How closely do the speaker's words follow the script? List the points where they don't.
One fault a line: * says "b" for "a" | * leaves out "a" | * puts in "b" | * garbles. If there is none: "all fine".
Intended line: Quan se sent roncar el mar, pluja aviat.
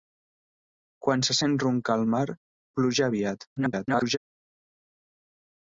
* garbles